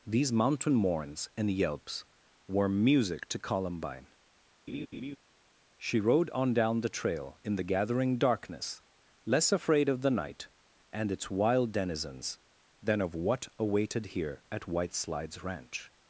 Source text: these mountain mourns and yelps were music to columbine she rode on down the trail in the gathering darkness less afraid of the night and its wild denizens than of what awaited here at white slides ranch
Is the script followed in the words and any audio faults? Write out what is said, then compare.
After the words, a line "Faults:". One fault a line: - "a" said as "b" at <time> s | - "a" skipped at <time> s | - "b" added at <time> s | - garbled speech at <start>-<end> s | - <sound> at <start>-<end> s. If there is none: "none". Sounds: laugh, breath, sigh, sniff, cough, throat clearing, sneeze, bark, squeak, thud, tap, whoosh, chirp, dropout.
these mountain mourns and yelps were music to columbine she rode on down the trail in the gathering darkness less afraid of the night and its wild denizens than of what awaited here at white slides ranch
Faults:
- laugh at 4.7-5.2 s